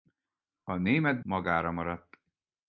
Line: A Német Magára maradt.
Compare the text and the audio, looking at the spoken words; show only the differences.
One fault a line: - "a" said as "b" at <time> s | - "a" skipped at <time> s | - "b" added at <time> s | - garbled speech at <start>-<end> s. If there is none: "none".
none